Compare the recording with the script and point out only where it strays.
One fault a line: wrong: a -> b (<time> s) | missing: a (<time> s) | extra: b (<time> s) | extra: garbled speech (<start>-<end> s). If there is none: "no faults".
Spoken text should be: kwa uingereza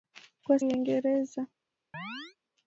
no faults